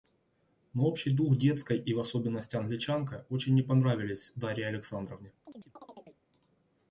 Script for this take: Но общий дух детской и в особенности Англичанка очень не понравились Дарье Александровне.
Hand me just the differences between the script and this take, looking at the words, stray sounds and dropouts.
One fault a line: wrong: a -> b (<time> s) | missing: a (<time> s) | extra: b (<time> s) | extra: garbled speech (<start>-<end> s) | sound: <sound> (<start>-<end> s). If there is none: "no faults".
sound: chirp (5.4-6.2 s)